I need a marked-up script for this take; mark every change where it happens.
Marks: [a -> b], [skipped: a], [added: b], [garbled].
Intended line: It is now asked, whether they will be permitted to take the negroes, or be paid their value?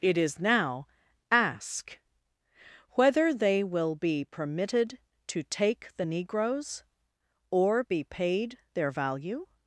It is now [asked, -> ask] whether they will be permitted to take the negroes, or be paid their value?